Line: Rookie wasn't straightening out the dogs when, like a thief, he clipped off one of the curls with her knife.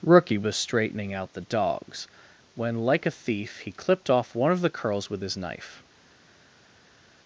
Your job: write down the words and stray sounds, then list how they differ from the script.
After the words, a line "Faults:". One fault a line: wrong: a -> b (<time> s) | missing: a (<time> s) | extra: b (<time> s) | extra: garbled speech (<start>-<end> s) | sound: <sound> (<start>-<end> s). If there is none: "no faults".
Rookie was straightening out the dogs when, like a thief, he clipped off one of the curls with his knife.
Faults:
wrong: wasn't -> was (0.4 s)
wrong: her -> his (5.2 s)